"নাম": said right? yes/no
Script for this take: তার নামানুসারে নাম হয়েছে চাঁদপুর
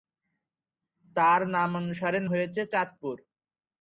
no